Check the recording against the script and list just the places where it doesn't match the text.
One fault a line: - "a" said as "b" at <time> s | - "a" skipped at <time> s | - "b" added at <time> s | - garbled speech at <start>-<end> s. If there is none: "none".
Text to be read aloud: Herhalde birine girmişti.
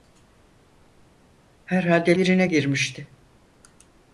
none